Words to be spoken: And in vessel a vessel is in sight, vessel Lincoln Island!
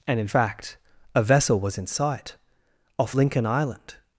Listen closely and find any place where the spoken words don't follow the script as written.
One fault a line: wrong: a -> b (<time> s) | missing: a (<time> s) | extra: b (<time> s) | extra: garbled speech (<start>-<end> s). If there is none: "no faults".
wrong: vessel -> fact (0.2 s)
wrong: is -> was (1.6 s)
wrong: vessel -> off (3.0 s)